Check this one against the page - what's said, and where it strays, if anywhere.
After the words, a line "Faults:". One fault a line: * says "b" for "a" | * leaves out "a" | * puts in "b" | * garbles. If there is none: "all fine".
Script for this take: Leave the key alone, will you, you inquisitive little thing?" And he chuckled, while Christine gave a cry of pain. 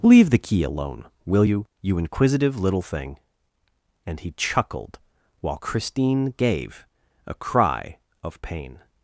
Leave the key alone, will you, you inquisitive little thing?" And he chuckled, while Christine gave a cry of pain.
Faults:
all fine